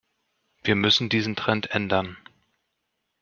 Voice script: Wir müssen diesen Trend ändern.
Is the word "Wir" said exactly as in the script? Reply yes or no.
yes